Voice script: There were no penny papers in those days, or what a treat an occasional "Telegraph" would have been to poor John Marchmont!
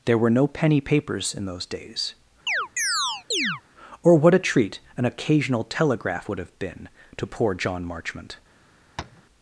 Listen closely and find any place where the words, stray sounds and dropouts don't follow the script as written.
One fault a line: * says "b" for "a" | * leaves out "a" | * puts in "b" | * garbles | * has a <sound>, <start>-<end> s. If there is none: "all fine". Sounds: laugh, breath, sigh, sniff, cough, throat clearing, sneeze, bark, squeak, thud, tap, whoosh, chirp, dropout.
* has a chirp, 2.5-3.6 s
* has a tap, 9.0-9.2 s